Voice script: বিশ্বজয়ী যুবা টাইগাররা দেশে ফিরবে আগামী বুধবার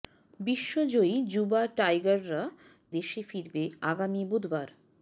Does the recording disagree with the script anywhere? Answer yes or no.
no